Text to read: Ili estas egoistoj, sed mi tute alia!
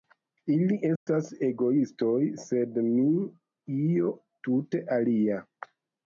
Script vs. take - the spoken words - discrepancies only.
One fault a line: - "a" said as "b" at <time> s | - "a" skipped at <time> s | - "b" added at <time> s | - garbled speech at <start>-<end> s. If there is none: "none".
- "io" added at 3.8 s